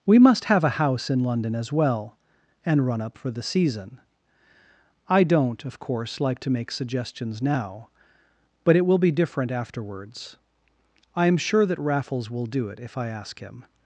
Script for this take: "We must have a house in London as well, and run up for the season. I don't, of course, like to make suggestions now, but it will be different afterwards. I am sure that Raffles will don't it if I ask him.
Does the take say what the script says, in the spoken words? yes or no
no